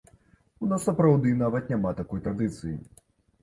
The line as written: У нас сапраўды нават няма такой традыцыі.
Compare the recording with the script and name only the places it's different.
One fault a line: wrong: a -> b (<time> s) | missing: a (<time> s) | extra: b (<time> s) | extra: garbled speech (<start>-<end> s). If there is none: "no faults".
no faults